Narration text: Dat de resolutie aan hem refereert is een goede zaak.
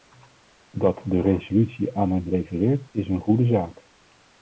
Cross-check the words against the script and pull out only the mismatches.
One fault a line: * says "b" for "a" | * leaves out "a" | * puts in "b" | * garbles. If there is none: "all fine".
all fine